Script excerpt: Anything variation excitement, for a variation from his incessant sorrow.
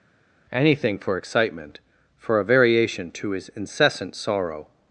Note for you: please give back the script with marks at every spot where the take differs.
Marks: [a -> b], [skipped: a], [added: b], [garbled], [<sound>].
Anything [variation -> for] excitement, for a variation [from -> to] his incessant sorrow.